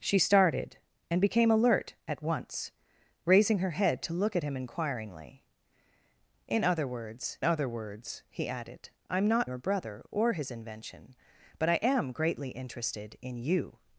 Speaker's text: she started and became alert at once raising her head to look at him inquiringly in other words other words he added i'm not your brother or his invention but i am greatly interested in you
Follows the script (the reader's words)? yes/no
yes